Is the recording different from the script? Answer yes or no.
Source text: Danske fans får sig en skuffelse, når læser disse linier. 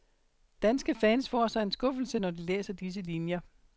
yes